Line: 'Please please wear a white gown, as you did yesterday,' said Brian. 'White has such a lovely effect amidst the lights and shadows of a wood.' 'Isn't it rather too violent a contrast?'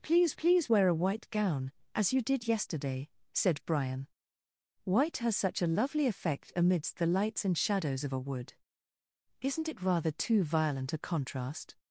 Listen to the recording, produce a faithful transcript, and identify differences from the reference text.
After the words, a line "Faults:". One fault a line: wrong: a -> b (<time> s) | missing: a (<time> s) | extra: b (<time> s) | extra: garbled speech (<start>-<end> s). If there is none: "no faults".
'Please please wear a white gown, as you did yesterday,' said Brian. 'White has such a lovely effect amidst the lights and shadows of a wood.' 'Isn't it rather too violent a contrast?'
Faults:
no faults